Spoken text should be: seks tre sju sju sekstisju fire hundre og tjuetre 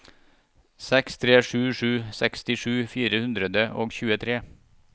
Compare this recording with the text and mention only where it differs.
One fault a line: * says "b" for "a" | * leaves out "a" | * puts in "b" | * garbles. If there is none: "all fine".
all fine